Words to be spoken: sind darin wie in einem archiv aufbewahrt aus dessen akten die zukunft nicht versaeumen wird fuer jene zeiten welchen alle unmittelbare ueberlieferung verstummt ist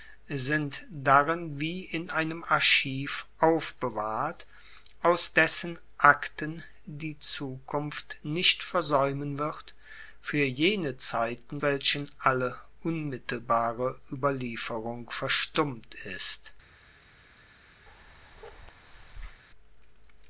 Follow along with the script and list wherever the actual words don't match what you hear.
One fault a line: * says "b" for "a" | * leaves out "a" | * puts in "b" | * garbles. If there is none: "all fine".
all fine